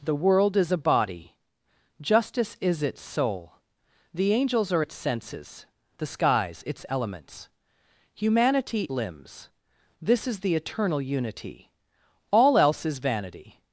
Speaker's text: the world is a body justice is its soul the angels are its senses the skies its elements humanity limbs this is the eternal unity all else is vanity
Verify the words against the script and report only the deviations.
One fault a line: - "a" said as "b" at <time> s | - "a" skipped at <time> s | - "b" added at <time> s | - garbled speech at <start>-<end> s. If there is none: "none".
none